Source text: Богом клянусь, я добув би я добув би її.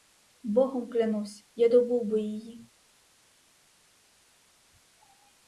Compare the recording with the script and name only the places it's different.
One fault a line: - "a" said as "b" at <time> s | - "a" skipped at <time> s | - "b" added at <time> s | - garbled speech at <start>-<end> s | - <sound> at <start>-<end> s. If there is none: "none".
- "я добув би" skipped at 2.2 s